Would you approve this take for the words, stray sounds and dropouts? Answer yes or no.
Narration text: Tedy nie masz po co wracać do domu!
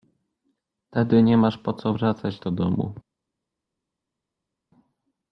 yes